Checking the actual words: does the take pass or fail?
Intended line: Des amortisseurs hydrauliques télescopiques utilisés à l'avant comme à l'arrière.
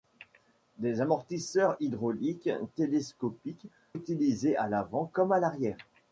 pass